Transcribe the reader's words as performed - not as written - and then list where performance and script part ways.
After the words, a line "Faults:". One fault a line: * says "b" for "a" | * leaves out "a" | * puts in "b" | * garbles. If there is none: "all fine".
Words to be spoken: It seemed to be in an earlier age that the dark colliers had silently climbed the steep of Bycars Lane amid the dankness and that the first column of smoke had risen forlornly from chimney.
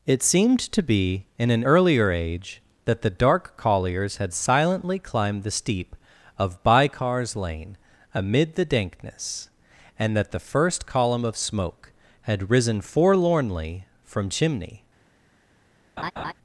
It seemed to be in an earlier age that the dark colliers had silently climbed the steep of Bycars Lane amid the dankness and that the first column of smoke had risen forlornly from chimney.
Faults:
all fine